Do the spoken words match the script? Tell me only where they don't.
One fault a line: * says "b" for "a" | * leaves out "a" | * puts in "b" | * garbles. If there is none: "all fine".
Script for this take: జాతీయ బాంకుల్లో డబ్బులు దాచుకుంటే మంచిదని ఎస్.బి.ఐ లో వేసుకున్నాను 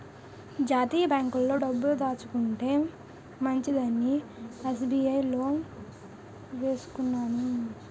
all fine